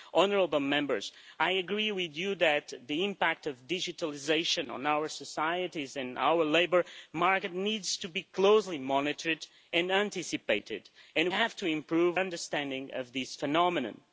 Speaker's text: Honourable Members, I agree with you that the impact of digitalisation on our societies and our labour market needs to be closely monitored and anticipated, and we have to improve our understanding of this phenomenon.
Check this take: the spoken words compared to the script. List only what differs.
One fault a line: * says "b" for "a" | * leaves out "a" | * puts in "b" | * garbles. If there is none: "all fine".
* leaves out "we"
* leaves out "our"